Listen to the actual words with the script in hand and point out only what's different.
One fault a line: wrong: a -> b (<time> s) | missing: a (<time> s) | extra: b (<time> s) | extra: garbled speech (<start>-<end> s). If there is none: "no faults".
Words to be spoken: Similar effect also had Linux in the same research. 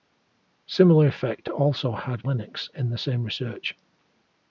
no faults